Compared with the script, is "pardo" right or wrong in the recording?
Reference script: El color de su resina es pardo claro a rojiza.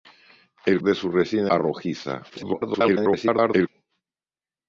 wrong